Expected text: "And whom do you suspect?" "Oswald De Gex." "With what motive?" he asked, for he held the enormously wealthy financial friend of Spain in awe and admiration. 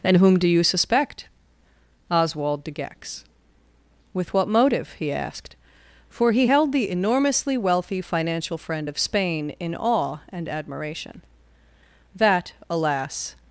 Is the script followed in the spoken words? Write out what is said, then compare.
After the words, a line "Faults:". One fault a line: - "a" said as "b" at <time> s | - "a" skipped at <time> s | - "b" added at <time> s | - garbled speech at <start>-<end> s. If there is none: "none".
"And whom do you suspect?" "Oswald De Gex." "With what motive?" he asked, for he held the enormously wealthy financial friend of Spain in awe and admiration. "That, alas
Faults:
- "That alas" added at 12.1 s